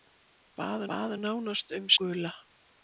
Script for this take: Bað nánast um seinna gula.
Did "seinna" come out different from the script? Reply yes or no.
yes